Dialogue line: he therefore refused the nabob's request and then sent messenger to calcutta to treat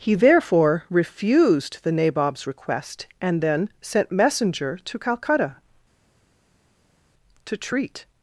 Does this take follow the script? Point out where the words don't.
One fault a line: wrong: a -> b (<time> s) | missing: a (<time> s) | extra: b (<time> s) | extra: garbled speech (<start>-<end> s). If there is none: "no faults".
no faults